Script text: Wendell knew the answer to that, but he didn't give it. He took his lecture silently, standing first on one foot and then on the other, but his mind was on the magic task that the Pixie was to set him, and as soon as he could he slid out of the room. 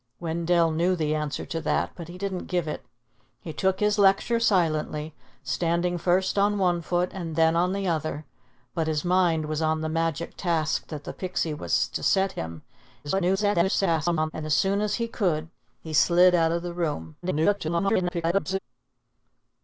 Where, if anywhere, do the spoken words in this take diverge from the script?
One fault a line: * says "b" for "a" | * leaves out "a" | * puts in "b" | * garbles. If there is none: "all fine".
* garbles
* garbles